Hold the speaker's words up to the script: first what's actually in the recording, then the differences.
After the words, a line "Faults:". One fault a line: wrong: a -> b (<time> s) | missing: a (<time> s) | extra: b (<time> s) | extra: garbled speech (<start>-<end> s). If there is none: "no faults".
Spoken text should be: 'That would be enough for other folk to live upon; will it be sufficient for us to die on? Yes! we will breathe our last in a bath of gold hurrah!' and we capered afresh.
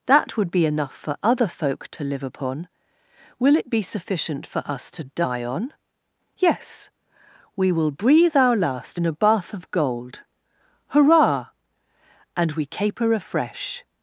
'That would be enough for other folk to live upon; will it be sufficient for us to die on? Yes! we will breathe our last in a bath of gold hurrah!' and we caper afresh.
Faults:
wrong: capered -> caper (12.6 s)